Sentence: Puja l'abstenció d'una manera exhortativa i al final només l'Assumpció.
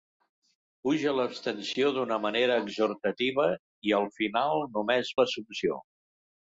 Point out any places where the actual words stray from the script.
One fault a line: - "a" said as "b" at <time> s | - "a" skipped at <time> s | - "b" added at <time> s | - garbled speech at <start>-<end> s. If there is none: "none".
none